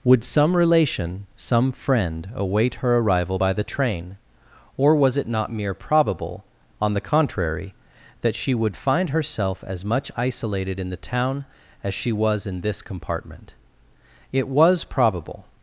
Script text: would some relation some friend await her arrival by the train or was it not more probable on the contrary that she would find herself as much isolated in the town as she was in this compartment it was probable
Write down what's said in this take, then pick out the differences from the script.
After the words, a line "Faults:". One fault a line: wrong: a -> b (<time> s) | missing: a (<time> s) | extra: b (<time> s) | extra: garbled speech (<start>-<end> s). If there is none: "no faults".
would some relation some friend await her arrival by the train or was it not mere probable on the contrary that she would find herself as much isolated in the town as she was in this compartment it was probable
Faults:
wrong: more -> mere (5.5 s)